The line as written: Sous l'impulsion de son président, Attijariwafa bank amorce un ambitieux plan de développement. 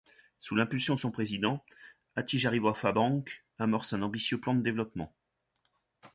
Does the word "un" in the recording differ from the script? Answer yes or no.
no